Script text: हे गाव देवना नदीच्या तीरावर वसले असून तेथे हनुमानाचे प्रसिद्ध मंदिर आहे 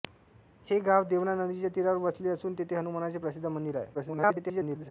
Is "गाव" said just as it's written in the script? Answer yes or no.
yes